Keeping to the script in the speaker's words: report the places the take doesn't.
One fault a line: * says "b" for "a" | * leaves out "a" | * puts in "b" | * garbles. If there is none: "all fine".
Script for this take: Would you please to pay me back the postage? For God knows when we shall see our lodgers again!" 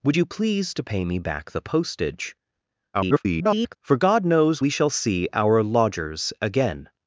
* garbles
* leaves out "when"